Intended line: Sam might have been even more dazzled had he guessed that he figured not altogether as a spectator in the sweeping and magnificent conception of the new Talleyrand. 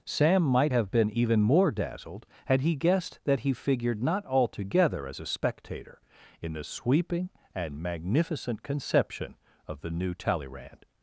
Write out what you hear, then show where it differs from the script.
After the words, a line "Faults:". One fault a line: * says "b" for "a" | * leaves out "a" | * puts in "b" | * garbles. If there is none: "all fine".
Sam might have been even more dazzled had he guessed that he figured not altogether as a spectator in the sweeping and magnificent conception of the new Talleyrand.
Faults:
all fine